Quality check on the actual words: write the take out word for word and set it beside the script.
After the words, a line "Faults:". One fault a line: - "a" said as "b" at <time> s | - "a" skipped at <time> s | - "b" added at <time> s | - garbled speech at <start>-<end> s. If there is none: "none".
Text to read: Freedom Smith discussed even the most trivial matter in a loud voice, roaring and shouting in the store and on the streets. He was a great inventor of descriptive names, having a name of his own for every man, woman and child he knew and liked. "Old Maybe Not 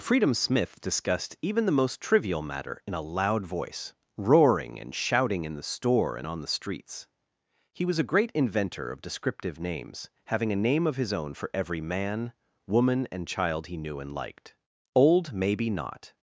Freedom Smith discussed even the most trivial matter in a loud voice, roaring and shouting in the store and on the streets. He was a great inventor of descriptive names, having a name of his own for every man, woman and child he knew and liked. "Old Maybe Not
Faults:
none